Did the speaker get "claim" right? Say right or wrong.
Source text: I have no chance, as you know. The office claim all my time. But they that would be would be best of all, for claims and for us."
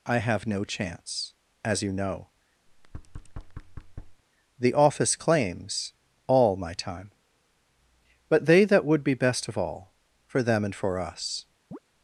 wrong